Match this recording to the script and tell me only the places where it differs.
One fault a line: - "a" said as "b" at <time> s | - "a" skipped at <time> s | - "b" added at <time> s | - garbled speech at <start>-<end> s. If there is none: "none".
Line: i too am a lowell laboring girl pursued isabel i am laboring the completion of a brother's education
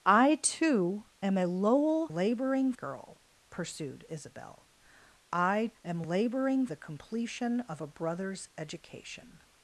none